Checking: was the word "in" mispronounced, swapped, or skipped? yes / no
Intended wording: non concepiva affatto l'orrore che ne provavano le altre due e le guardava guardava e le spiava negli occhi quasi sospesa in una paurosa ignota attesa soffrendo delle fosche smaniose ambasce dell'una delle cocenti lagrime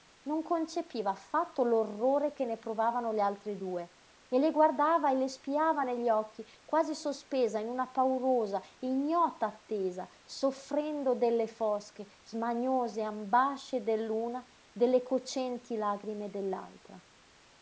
no